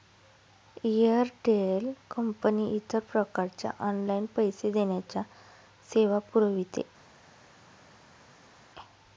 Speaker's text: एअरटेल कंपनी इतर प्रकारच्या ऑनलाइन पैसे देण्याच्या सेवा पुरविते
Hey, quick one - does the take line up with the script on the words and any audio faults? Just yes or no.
yes